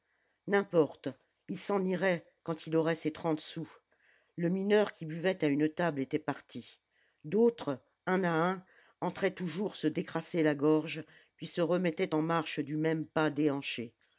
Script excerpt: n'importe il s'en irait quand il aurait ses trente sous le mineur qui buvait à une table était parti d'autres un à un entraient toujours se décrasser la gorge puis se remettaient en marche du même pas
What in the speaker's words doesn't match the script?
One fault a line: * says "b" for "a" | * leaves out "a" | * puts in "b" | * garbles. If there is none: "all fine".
all fine